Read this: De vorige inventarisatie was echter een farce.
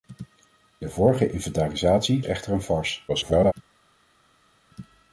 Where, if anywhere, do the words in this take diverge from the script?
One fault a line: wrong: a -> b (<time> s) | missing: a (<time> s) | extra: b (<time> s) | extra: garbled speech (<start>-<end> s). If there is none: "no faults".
missing: was (2.2 s)
extra: garbled speech (3.1-3.5 s)